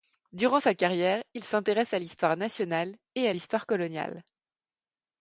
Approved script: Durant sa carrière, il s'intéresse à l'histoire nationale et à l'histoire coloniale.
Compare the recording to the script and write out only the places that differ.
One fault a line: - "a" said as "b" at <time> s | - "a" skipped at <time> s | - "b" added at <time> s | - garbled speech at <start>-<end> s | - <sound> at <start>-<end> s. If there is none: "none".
none